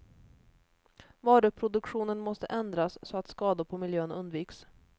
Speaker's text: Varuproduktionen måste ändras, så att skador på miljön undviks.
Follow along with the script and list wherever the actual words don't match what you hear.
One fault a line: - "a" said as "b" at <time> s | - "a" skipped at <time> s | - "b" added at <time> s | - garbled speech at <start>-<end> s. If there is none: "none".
none